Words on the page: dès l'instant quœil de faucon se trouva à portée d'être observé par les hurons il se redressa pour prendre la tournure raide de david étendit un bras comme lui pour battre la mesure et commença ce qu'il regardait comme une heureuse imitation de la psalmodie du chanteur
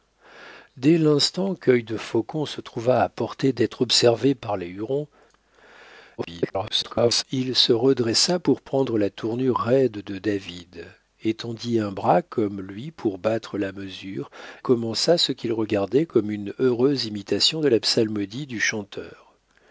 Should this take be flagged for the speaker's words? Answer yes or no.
yes